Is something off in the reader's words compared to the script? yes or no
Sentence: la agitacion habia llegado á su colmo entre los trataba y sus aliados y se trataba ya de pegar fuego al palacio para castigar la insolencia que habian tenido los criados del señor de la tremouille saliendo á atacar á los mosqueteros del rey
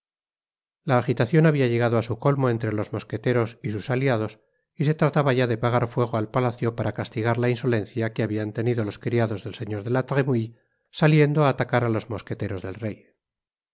yes